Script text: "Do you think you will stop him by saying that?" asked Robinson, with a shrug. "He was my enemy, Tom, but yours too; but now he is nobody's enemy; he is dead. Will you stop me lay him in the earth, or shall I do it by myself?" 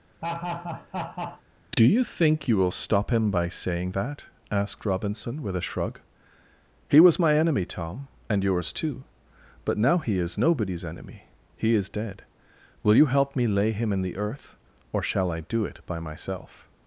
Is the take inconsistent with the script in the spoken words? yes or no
yes